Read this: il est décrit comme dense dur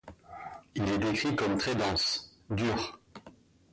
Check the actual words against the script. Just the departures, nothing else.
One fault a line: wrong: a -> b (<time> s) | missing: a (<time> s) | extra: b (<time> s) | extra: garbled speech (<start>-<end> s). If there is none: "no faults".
extra: très (1.6 s)